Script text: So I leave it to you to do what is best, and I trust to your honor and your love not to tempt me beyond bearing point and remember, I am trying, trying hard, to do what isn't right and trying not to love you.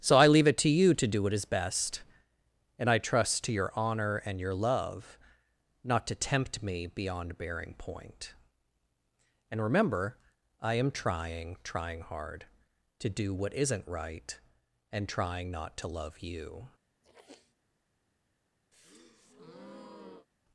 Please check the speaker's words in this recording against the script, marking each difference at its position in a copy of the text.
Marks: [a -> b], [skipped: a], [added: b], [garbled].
So I leave it to you to do what is best, and I trust to your honor and your love not to tempt me beyond bearing point and remember, I am trying, trying hard, to do what isn't right and trying not to love you.